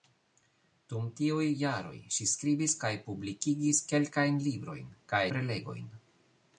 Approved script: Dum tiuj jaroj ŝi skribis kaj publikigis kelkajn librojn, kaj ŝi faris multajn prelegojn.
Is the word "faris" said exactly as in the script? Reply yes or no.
no